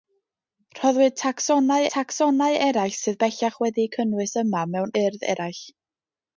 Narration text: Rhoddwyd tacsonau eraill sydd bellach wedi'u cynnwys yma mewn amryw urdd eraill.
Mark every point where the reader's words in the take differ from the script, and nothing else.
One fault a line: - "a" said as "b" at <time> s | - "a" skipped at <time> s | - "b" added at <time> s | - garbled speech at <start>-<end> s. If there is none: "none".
- "tacsonau" added at 1.9 s
- "amryw" skipped at 4.9 s